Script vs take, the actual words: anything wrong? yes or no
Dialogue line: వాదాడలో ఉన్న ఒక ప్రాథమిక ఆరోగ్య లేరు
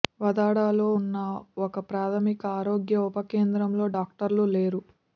yes